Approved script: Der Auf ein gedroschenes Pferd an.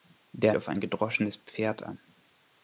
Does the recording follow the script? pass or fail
pass